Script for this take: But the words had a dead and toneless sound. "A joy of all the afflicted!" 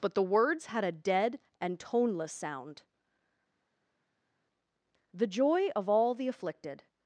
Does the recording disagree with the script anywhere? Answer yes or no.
yes